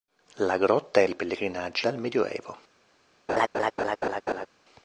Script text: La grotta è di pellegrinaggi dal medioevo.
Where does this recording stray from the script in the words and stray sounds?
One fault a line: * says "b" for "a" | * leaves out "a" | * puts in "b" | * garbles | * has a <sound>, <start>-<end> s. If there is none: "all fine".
* has a laugh, 3.3-4.5 s